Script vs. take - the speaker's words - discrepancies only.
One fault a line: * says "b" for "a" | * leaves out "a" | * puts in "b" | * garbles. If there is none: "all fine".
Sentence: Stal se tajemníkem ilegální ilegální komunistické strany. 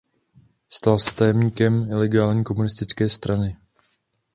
* leaves out "ilegální"